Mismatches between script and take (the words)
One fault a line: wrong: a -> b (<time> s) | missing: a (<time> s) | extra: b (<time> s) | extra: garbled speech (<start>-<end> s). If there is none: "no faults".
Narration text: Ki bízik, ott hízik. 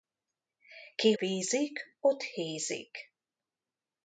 no faults